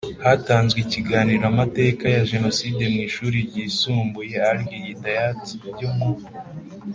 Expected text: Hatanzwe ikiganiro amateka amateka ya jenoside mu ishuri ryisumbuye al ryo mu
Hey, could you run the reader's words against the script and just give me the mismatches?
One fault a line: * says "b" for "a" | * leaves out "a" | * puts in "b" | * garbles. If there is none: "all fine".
* leaves out "amateka"
* puts in "hidayat"